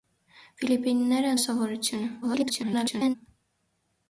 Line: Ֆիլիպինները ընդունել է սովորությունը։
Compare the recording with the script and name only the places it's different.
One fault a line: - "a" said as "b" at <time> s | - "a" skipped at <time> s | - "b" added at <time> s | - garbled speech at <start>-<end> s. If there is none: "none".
- "ընդունել" skipped at 1.4 s
- garbled speech at 2.2-3.2 s